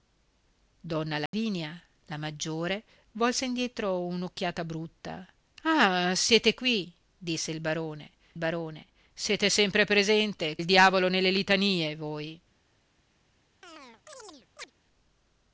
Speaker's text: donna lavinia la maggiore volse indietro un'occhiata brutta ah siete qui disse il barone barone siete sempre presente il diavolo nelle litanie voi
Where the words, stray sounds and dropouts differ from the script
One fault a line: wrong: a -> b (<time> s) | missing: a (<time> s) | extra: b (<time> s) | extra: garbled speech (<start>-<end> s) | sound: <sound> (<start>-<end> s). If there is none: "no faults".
sound: dropout (1.3-1.3 s)
sound: chirp (13.6-14.7 s)